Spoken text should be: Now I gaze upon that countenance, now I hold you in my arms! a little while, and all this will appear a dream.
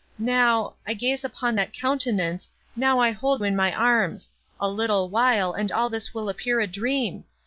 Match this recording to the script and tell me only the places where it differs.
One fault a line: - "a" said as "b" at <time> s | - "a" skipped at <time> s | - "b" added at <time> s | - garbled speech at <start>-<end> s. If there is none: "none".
- "you" skipped at 3.4 s